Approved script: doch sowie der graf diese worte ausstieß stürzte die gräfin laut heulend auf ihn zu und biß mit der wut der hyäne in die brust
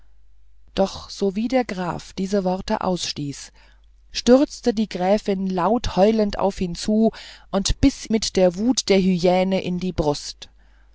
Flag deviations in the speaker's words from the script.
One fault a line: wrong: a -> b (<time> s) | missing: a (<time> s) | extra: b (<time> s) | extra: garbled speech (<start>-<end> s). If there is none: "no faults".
no faults